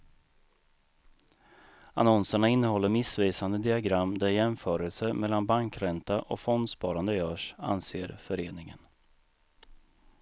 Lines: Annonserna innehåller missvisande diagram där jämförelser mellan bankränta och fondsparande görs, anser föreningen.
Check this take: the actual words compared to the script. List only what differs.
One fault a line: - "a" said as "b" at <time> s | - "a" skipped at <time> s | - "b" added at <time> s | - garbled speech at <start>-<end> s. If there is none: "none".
none